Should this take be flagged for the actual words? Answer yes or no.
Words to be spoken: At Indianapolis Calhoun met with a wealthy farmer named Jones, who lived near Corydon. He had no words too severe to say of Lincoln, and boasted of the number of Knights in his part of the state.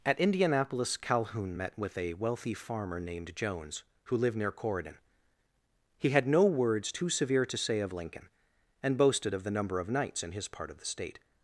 no